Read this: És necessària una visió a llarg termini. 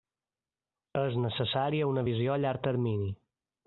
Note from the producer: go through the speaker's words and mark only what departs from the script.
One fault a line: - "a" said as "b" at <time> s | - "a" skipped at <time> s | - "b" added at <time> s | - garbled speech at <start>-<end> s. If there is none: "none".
none